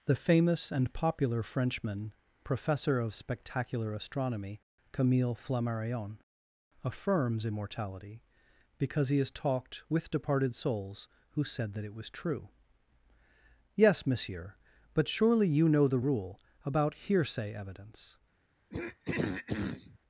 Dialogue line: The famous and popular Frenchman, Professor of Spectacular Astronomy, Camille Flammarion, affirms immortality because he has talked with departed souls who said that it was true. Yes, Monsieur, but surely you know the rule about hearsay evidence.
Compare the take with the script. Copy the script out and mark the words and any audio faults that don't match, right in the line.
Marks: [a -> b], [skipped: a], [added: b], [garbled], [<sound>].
The famous and popular Frenchman, Professor of Spectacular Astronomy, Camille Flammarion, affirms immortality because he has talked with departed souls who said that it was true. Yes, Monsieur, but surely you know the rule about hearsay evidence. [throat clearing]